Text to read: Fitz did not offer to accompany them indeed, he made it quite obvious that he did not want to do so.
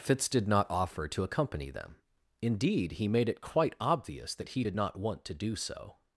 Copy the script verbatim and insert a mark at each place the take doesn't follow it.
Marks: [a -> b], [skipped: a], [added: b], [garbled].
Fitz did not offer to accompany them indeed, he made it quite obvious that he did not want to do so.